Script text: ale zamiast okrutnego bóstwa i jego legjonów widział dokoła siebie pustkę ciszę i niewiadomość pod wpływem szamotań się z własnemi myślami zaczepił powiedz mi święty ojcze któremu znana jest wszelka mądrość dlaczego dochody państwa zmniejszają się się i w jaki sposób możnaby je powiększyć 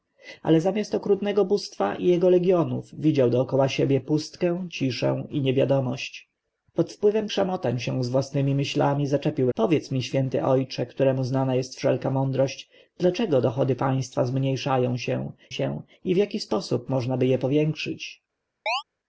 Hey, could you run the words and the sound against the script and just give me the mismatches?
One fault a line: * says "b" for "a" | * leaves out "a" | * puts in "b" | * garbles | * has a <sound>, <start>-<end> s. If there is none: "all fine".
* has a chirp, 18.7-18.8 s